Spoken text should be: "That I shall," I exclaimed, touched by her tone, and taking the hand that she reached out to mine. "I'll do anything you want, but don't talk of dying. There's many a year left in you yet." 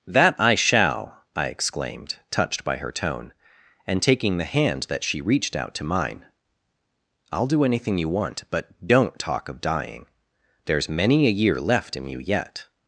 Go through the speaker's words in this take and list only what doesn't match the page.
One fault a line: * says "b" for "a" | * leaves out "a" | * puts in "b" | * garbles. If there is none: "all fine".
all fine